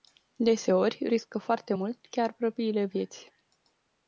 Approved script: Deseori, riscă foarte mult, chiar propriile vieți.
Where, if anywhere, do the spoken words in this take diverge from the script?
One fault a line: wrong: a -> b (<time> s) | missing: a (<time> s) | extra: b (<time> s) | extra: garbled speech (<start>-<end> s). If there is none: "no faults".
no faults